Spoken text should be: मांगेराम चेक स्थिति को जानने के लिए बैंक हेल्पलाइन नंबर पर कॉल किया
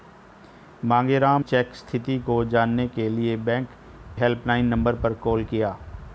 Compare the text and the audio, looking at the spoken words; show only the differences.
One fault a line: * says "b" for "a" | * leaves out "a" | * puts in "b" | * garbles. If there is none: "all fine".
all fine